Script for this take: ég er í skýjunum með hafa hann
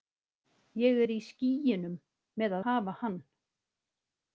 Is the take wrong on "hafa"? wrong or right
right